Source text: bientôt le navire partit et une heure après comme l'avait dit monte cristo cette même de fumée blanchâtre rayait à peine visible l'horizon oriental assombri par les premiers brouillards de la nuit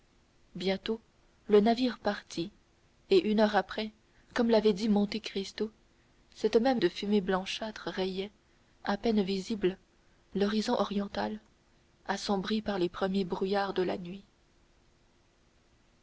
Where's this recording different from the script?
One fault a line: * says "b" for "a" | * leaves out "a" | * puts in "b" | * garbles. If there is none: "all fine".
all fine